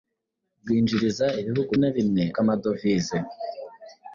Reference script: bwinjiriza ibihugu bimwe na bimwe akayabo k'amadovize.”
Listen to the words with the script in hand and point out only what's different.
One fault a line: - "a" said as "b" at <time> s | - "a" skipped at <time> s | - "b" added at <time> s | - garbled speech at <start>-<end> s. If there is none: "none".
- "bimwe" skipped at 1.7 s
- "akayabo" skipped at 2.2 s